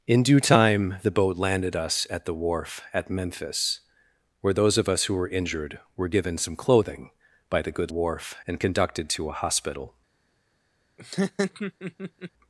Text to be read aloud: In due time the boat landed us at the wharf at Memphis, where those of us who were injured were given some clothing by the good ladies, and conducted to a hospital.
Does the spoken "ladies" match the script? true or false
false